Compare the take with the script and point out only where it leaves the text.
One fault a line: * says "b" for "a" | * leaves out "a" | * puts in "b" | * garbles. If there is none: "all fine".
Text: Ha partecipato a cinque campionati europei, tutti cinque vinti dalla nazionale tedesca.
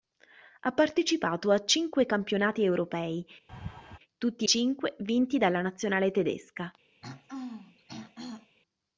all fine